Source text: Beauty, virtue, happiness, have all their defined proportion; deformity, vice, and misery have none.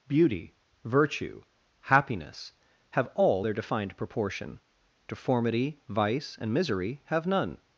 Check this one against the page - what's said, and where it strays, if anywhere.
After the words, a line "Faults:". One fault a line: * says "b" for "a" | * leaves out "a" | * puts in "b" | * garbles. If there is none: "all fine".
Beauty, virtue, happiness, have all their defined proportion; deformity, vice, and misery have none.
Faults:
all fine